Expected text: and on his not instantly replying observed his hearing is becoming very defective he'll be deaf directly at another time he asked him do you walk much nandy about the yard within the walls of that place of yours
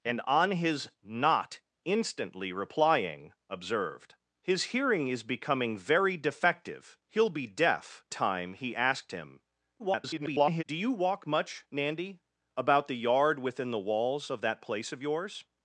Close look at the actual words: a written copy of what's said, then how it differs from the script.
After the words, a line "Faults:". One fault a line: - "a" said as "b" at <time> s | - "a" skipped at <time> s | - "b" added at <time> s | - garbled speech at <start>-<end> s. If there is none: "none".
and on his not instantly replying observed his hearing is becoming very defective he'll be deaf time he asked him [garbled] do you walk much nandy about the yard within the walls of that place of yours
Faults:
- "directly at another" skipped at 8.0 s
- garbled speech at 9.8-10.6 s